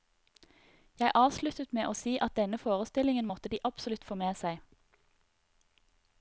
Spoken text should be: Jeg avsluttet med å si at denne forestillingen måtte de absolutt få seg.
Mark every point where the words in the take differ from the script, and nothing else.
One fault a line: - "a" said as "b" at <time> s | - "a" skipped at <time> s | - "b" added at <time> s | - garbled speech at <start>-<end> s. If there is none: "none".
- "med" added at 4.2 s